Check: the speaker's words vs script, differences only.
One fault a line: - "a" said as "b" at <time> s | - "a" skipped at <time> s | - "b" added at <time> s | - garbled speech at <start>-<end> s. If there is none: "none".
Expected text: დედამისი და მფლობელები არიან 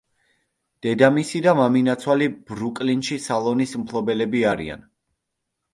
- "მამინაცვალი ბრუკლინში სალონის" added at 1.6 s